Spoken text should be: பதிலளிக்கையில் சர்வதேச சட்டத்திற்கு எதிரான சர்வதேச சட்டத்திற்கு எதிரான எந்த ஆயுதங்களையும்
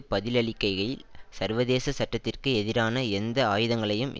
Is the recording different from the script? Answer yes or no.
yes